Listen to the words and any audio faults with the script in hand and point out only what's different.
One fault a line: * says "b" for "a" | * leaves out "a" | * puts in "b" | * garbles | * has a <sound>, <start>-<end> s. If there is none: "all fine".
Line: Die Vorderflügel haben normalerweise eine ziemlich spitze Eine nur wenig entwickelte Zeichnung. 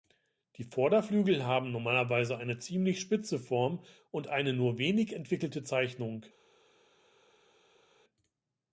* puts in "Form und"